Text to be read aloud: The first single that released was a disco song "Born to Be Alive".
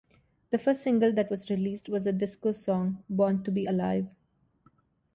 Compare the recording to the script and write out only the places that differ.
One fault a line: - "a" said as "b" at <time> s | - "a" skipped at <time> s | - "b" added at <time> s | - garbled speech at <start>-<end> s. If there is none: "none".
- "was" added at 1.3 s
- "a" said as "the" at 2.0 s